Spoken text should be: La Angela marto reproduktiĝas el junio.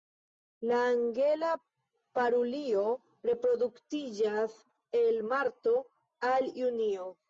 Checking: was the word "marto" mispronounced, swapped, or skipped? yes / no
yes